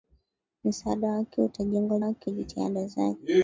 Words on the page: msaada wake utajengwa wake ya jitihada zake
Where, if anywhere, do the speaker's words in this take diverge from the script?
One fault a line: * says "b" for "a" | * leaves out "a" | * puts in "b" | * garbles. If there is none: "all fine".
all fine